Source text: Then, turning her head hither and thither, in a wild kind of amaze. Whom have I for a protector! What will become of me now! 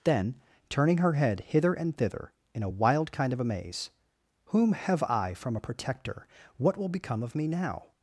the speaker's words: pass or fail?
fail